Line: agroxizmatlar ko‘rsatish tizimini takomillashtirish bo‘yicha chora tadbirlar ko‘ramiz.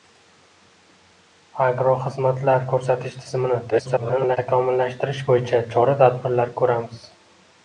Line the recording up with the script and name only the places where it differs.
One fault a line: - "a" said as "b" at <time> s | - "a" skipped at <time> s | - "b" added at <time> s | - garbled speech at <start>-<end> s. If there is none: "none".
- garbled speech at 3.7-4.4 s